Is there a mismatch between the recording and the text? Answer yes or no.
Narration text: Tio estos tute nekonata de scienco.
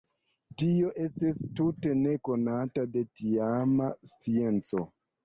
yes